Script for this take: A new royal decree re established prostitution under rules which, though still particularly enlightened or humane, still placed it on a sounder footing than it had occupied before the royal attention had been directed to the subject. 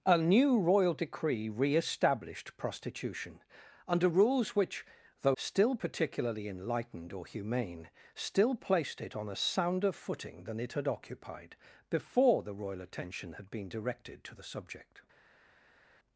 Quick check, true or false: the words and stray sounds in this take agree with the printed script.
true